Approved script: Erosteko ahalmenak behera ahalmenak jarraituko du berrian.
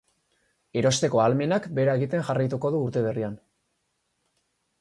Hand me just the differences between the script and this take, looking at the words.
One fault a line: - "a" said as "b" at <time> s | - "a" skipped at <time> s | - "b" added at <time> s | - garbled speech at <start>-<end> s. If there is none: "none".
- "ahalmenak" said as "egiten" at 2.0 s
- "urte" added at 2.8 s